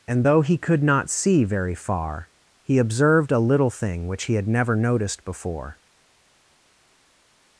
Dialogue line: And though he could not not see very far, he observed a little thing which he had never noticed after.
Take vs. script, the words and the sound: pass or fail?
fail